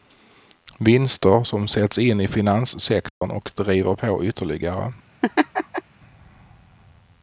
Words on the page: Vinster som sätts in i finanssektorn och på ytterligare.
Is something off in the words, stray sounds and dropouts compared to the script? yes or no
yes